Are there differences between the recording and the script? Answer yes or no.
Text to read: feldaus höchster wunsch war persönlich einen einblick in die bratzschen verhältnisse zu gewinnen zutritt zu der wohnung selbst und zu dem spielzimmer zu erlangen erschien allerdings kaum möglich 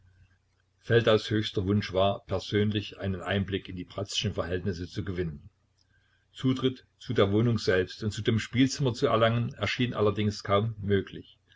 no